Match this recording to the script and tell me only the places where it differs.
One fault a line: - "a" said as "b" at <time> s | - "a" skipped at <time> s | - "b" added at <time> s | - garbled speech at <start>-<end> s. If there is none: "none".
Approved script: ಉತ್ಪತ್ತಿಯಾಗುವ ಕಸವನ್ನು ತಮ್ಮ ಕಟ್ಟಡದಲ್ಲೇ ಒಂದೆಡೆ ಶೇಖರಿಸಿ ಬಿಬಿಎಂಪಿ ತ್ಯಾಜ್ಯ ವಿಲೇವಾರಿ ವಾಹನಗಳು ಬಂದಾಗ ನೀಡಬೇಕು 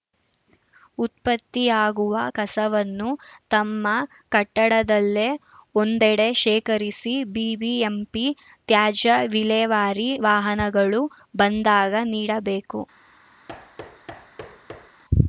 none